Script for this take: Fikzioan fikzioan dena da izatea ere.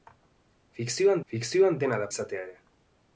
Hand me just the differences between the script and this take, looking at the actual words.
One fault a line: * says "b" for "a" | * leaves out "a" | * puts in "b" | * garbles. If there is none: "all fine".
all fine